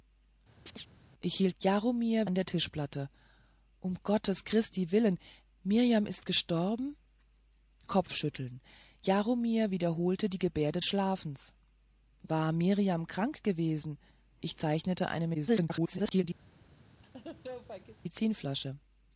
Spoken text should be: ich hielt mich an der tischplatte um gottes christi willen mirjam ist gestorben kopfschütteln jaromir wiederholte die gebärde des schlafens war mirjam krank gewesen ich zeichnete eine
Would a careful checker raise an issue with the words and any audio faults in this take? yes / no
yes